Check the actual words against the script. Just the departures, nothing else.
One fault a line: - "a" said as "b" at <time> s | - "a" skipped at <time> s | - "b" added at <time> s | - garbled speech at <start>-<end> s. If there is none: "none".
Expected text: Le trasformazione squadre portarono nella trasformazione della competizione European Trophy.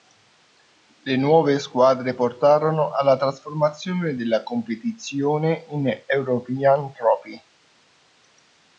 - "trasformazione" said as "nuove" at 1.1 s
- "nella" said as "alla" at 2.9 s
- "in" added at 5.7 s